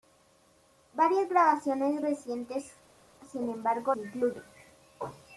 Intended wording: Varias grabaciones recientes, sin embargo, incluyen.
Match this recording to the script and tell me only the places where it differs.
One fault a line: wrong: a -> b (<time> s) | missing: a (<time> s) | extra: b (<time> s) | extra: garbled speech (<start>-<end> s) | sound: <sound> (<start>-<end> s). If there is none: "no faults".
no faults